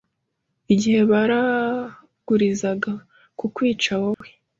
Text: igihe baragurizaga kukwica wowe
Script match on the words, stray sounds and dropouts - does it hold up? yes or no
no